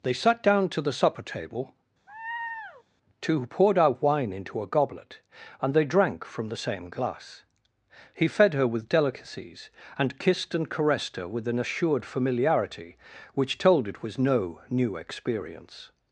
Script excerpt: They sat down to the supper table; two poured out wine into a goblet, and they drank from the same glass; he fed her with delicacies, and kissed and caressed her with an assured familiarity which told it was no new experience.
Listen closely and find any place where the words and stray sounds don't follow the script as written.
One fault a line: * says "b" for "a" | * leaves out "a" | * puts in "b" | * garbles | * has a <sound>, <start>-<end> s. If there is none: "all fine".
* has a laugh, 2.1-2.8 s